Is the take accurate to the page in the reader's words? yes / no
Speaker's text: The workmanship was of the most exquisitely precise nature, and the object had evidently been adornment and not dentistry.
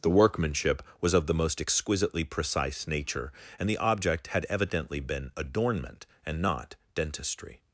yes